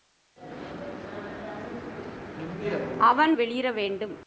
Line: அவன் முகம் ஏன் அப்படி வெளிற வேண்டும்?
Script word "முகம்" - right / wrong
wrong